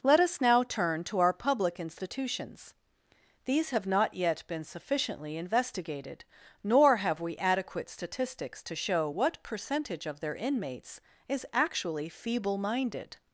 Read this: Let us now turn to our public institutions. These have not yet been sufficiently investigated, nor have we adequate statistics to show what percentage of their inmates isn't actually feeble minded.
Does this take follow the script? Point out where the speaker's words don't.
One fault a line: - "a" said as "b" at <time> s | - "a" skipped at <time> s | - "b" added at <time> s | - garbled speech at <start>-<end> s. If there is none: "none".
- "isn't" said as "is" at 11.3 s